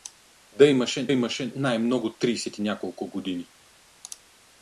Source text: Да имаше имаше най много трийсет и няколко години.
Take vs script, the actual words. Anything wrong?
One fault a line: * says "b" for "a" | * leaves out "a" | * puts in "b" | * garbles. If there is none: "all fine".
all fine